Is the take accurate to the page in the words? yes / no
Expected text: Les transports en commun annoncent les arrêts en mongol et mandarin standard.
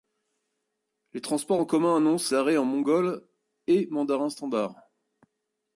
no